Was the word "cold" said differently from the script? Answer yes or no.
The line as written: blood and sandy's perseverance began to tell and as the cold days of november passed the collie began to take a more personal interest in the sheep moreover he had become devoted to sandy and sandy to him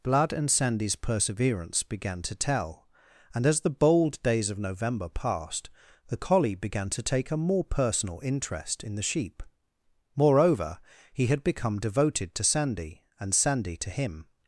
yes